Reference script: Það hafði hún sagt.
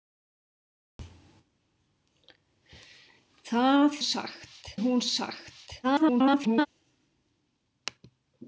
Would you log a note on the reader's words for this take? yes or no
yes